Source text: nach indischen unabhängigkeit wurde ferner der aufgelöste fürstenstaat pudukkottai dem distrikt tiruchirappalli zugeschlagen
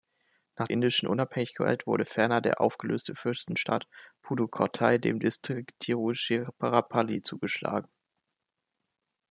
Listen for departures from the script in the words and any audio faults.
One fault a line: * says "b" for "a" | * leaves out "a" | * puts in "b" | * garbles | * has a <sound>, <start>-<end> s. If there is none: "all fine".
all fine